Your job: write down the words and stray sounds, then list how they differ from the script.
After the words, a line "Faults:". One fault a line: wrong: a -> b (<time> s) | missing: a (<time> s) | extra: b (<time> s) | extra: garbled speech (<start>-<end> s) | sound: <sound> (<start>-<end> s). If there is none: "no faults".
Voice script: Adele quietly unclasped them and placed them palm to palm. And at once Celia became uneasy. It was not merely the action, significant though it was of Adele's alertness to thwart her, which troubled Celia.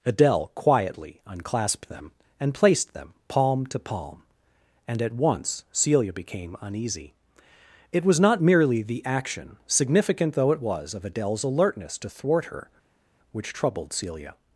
Adele quietly unclasped them and placed them palm to palm. And at once Celia became uneasy. It was not merely the action, significant though it was of Adele's alertness to thwart her, which troubled Celia.
Faults:
no faults